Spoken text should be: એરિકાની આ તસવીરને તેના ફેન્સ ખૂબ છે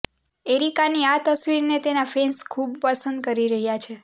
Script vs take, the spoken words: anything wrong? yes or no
yes